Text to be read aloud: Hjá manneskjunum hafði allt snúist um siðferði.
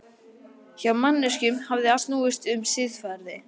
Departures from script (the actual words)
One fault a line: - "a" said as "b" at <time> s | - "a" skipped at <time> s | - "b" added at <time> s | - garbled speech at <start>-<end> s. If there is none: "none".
- "allt" skipped at 1.9 s